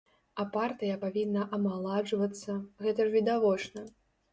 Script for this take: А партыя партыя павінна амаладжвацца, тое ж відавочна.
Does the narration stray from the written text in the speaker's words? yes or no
yes